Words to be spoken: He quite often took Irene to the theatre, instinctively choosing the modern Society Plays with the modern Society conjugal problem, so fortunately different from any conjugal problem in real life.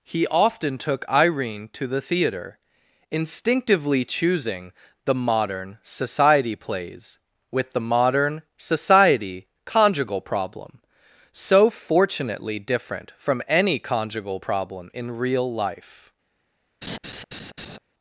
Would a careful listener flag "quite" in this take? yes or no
yes